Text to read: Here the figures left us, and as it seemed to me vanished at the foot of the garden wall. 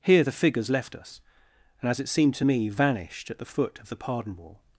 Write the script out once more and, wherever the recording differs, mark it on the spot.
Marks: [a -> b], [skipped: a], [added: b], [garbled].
Here the figures left us, and as it seemed to me vanished at the foot of the [garden -> pardon] wall.